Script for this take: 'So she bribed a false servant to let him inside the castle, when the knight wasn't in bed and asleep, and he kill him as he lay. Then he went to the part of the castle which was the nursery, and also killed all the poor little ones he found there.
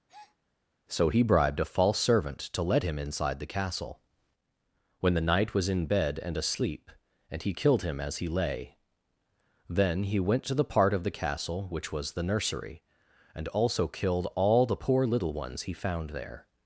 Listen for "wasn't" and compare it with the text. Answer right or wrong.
wrong